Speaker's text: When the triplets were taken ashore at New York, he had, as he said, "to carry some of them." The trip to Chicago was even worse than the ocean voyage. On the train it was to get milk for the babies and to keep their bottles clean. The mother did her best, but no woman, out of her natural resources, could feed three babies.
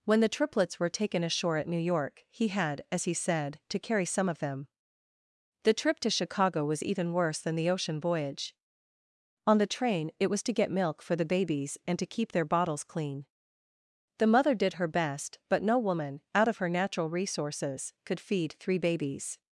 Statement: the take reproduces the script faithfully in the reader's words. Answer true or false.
true